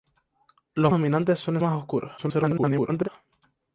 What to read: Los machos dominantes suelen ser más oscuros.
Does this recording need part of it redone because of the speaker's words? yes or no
yes